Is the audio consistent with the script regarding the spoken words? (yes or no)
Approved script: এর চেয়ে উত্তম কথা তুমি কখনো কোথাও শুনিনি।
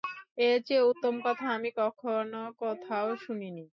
no